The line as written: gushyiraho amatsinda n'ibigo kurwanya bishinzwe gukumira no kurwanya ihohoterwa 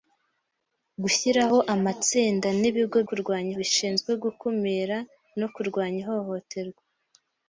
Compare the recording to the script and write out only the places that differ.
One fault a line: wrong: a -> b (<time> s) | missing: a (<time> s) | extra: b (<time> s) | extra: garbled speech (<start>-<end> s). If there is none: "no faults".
no faults